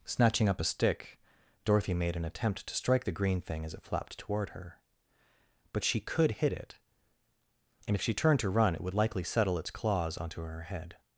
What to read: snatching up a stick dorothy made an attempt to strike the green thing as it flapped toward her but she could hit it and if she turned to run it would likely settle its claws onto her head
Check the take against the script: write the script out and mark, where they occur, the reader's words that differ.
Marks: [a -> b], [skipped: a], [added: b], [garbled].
snatching up a stick dorothy made an attempt to strike the green thing as it flapped toward her but she could hit it and if she turned to run it would likely settle its claws onto her head